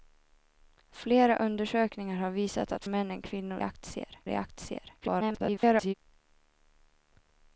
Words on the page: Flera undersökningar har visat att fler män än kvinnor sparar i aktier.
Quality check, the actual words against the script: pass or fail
fail